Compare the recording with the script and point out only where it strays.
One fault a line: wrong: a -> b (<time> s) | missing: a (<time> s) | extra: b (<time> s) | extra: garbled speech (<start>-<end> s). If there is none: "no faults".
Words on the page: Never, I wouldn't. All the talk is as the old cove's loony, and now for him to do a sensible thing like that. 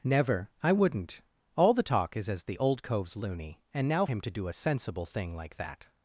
missing: for (4.1 s)